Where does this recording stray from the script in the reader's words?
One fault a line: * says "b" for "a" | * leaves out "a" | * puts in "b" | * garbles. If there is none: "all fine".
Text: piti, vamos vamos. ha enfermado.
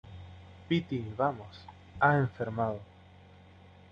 * leaves out "vamos"